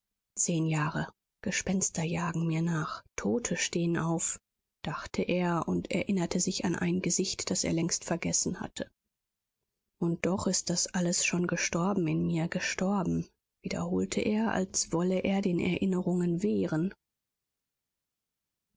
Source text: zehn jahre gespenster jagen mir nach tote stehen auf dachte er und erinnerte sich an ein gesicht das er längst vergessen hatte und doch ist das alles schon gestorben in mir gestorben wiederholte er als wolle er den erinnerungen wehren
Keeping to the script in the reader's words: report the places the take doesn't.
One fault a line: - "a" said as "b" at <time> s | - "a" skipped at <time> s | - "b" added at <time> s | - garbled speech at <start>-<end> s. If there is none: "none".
none